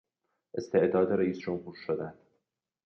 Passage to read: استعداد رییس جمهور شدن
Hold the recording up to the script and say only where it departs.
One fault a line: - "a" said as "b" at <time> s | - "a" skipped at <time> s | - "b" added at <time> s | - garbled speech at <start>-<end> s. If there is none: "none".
none